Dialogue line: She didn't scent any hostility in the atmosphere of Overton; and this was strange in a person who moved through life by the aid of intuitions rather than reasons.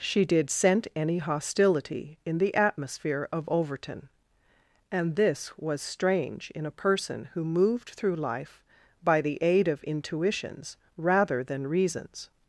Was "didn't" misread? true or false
true